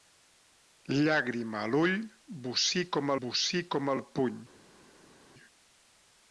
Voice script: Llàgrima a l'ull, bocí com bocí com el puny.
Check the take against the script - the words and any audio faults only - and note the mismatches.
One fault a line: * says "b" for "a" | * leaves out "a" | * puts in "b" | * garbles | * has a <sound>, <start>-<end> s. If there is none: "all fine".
all fine